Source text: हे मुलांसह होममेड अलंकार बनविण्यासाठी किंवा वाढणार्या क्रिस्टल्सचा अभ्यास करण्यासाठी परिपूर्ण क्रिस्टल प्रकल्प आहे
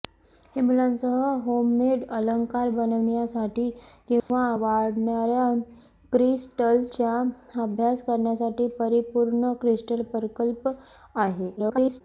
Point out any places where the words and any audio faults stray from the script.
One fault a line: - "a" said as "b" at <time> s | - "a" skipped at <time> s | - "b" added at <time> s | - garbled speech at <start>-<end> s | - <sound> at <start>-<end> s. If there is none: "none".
- dropout at 4.2-4.3 s
- garbled speech at 11.6-12.0 s